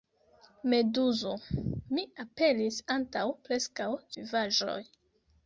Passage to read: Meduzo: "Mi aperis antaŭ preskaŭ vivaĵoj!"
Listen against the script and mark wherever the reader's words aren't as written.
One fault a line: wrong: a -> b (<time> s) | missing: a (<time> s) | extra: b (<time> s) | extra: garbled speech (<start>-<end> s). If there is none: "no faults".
no faults